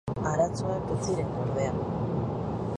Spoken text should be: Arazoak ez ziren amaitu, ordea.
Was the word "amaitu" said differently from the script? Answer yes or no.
yes